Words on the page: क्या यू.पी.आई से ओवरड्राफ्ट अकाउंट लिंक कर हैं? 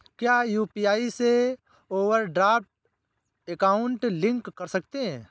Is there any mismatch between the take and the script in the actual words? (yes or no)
yes